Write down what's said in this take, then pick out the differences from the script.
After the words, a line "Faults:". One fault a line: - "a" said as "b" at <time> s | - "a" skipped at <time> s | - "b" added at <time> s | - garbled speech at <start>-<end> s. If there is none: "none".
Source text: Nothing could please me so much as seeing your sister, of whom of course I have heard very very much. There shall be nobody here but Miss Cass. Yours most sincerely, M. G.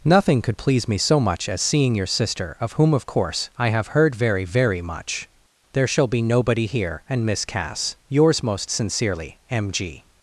Nothing could please me so much as seeing your sister, of whom of course I have heard very very much. There shall be nobody here and Miss Cass. Yours most sincerely, M. G.
Faults:
- "but" said as "and" at 7.1 s